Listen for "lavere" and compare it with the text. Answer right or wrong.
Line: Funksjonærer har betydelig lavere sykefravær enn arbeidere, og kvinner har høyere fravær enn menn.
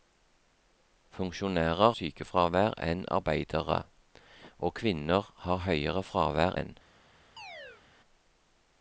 wrong